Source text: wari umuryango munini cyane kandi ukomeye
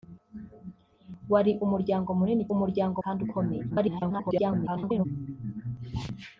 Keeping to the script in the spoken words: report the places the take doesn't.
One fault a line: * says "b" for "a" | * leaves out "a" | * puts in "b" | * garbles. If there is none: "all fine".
* says "umuryango" for "cyane"
* garbles